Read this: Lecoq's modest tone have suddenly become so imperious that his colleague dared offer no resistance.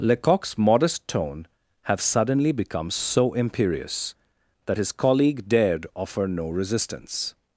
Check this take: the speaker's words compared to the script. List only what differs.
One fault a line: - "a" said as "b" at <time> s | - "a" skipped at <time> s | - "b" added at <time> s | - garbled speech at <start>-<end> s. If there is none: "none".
none